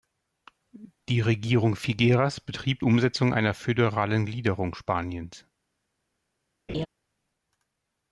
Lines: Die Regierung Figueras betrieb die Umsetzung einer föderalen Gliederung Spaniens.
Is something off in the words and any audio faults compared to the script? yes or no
yes